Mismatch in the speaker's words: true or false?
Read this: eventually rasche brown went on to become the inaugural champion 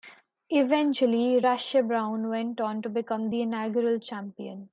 false